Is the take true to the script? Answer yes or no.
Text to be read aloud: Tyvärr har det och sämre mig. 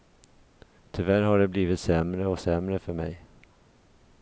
no